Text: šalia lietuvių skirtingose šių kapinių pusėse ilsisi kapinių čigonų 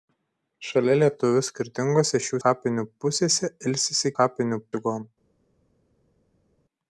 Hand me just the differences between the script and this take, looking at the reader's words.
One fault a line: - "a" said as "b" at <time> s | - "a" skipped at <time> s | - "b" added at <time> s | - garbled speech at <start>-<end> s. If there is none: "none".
none